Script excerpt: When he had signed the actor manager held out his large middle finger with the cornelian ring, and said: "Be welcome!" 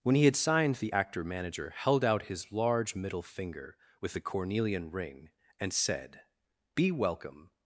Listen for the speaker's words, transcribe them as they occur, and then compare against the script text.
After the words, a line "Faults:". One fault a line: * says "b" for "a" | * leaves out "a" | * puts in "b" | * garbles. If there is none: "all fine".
When he had signed the actor manager held out his large middle finger with the cornelian ring, and said: "Be welcome!"
Faults:
all fine